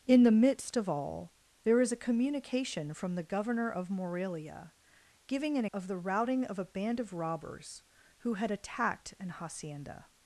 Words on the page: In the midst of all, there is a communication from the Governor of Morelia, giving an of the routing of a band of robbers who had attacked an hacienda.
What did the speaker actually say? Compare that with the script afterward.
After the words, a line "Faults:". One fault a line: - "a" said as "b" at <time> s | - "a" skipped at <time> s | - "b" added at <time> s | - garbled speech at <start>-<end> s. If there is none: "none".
In the midst of all, there is a communication from the Governor of Morelia, giving an of the routing of a band of robbers who had attacked an hacienda.
Faults:
none